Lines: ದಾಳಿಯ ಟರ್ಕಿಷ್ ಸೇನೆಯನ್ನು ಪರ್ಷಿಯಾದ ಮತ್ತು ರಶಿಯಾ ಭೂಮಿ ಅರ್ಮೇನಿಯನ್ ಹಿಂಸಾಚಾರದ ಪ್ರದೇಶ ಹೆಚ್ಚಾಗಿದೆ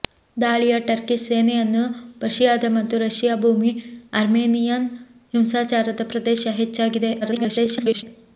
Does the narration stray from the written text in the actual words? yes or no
yes